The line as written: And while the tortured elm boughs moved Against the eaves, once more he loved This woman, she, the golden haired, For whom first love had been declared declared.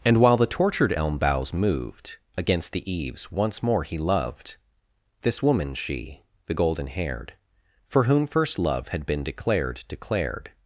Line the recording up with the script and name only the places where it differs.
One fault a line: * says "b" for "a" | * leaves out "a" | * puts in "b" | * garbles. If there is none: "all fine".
all fine